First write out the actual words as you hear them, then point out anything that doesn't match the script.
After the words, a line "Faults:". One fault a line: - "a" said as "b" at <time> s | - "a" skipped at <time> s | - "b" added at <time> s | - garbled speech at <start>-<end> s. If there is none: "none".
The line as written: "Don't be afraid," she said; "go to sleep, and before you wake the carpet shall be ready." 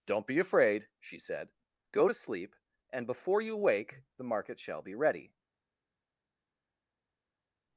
"Don't be afraid," she said; "go to sleep, and before you wake the market shall be ready."
Faults:
- "carpet" said as "market" at 4.2 s